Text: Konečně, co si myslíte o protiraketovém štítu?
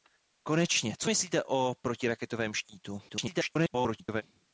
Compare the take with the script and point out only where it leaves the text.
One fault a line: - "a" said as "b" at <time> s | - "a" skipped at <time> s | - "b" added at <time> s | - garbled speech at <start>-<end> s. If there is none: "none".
- "si" skipped at 1.1 s
- garbled speech at 3.1-4.2 s